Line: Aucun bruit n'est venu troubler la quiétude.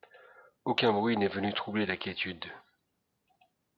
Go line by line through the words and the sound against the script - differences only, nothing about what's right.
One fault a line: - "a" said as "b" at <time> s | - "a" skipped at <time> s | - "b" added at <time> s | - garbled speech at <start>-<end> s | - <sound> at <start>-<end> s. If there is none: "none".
none